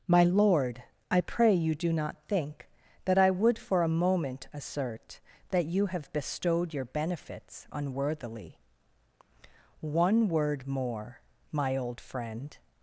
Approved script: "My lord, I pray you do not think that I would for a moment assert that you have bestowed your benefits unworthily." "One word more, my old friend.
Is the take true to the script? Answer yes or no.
yes